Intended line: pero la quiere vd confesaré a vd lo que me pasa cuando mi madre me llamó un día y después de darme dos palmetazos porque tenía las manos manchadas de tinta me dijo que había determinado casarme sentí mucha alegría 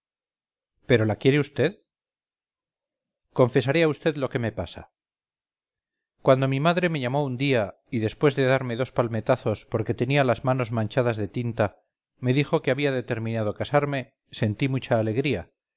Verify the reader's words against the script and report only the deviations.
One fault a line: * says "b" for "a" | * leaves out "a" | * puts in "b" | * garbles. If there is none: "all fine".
all fine